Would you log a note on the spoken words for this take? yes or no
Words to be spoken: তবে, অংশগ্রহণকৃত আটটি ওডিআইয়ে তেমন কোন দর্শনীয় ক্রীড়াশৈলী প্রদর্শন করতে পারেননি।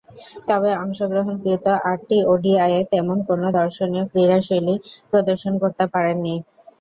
no